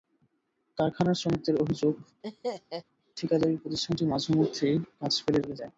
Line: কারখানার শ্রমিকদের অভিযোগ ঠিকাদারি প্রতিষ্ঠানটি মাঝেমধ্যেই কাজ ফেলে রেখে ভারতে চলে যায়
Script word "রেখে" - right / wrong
wrong